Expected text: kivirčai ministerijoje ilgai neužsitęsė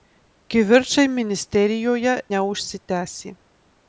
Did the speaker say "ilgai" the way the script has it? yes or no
no